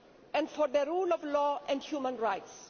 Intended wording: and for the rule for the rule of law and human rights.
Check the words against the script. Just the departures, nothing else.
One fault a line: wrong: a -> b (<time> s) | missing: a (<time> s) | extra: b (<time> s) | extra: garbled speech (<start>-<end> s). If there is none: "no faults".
missing: for the rule (1.1 s)